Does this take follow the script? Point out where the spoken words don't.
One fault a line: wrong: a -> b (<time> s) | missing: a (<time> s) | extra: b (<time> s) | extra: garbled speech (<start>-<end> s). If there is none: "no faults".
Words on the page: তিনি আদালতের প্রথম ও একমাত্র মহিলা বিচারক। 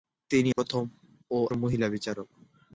missing: আদালতের (0.5 s)
missing: একমাত্র (1.4 s)